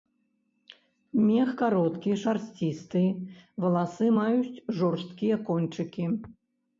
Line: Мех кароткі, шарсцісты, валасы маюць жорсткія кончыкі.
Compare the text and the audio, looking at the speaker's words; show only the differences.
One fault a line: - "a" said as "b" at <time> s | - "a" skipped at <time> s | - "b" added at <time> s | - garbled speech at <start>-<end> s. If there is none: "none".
none